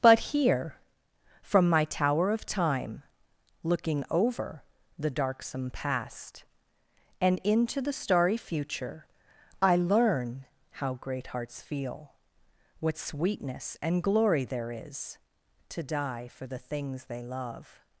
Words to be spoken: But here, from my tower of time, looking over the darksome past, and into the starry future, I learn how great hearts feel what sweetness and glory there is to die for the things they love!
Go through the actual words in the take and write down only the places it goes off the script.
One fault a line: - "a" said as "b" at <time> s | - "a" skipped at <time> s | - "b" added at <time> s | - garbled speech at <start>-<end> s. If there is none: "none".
none